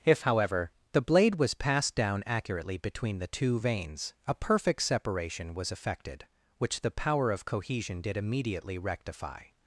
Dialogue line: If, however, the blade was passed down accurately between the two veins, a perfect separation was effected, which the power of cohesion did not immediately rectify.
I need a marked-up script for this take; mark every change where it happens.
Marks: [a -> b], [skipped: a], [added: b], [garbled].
If, however, the blade was passed down accurately between the two veins, a perfect separation was effected, which the power of cohesion did [skipped: not] immediately rectify.